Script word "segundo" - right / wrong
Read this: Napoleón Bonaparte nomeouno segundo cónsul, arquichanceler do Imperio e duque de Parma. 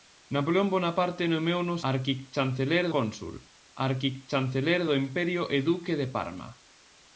wrong